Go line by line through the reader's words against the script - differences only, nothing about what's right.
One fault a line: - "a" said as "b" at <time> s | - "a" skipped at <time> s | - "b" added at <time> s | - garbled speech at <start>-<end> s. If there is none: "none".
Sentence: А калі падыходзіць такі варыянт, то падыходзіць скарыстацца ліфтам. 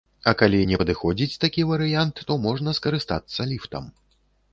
- "не" added at 0.7 s
- "падыходзіць" said as "можна" at 2.5 s